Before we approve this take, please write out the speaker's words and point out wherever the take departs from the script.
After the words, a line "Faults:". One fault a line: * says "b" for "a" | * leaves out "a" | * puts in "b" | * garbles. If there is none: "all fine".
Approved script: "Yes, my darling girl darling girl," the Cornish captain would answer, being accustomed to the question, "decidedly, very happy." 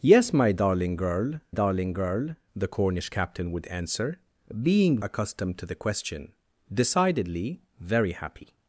"Yes, my darling girl darling girl," the Cornish captain would answer, being accustomed to the question, "decidedly, very happy."
Faults:
all fine